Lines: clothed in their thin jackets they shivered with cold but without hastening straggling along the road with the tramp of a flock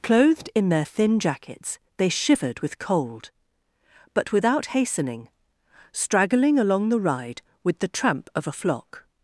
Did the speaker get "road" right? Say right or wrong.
wrong